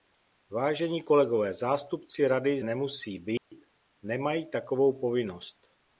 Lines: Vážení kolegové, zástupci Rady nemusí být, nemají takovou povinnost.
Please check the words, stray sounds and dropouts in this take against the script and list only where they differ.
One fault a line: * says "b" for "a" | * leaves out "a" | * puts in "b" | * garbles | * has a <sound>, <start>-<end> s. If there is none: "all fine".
* has a dropout, 3.4-3.5 s